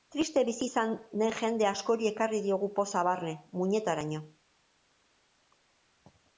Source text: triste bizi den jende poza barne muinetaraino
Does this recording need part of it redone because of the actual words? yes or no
yes